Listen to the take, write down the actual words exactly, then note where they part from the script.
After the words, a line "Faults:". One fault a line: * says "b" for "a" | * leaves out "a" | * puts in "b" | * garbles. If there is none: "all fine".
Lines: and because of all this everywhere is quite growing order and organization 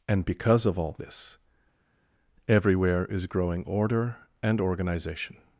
and because of all this everywhere is growing order and organization
Faults:
* leaves out "quite"